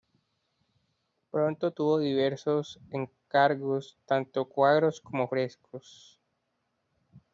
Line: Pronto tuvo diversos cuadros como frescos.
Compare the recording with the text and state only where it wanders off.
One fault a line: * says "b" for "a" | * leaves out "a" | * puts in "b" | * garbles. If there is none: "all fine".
* puts in "encargos tanto"